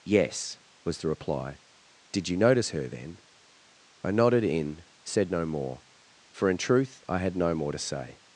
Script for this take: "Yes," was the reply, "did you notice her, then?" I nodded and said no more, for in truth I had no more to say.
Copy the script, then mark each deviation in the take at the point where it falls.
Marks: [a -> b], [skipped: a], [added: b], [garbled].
"Yes," was the reply, "did you notice her, then?" I nodded [and -> in] said no more, for in truth I had no more to say.